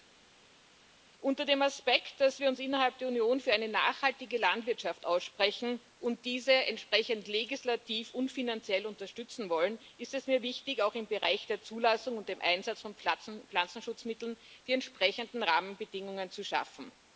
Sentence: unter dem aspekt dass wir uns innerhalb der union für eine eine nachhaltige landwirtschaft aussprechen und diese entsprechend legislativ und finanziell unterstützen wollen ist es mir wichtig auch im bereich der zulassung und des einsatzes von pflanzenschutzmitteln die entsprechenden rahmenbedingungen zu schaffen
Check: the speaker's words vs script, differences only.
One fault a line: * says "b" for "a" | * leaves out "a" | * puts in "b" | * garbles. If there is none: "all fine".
* leaves out "eine"